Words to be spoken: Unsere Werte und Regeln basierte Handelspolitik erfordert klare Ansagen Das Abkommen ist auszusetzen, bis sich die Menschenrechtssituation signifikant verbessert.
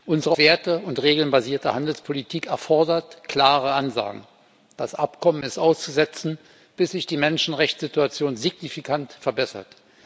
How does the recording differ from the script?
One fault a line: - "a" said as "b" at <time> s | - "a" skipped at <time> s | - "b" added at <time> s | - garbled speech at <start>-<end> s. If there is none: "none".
none